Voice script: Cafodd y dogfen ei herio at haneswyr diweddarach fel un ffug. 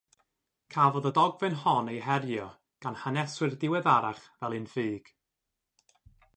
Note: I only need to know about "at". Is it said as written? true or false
false